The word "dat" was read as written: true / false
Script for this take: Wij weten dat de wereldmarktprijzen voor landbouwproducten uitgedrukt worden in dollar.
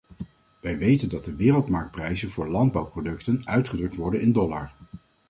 true